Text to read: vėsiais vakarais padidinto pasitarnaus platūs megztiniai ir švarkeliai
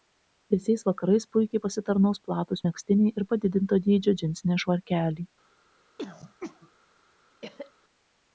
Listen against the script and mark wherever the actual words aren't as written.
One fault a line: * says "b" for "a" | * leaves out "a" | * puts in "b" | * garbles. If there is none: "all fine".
* says "puikiai" for "padidinto"
* puts in "padidinto dydžio džinsiniai"